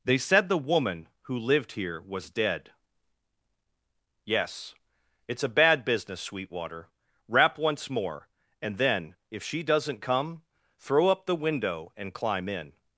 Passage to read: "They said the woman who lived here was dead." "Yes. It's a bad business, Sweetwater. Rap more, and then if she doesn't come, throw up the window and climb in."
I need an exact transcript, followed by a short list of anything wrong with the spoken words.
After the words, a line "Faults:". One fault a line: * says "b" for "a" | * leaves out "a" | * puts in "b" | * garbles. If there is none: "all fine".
"They said the woman who lived here was dead." "Yes. It's a bad business, Sweetwater. Rap once more, and then if she doesn't come, throw up the window and climb in."
Faults:
* puts in "once"